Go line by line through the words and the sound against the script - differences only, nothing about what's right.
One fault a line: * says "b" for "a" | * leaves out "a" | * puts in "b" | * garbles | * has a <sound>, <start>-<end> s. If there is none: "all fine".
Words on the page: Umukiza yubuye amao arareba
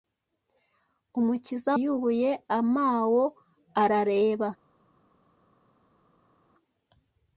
all fine